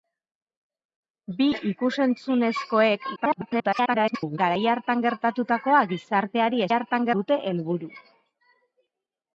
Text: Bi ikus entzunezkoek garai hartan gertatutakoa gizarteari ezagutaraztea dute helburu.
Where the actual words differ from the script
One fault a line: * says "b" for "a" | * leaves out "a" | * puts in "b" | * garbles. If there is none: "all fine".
* garbles
* says "hartan" for "ezagutaraztea"